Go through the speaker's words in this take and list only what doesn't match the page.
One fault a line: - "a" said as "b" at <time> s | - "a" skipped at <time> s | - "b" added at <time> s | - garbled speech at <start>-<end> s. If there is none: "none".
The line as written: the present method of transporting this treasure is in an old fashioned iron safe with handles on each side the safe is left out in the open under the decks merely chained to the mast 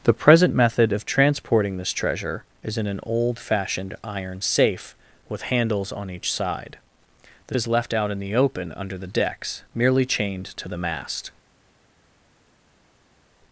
- "safe" skipped at 7.5 s